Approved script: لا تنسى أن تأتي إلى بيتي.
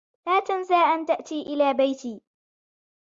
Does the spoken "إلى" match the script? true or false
true